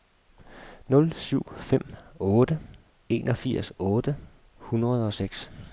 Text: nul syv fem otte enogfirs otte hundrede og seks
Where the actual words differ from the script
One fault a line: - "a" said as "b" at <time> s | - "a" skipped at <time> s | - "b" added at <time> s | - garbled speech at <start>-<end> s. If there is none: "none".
none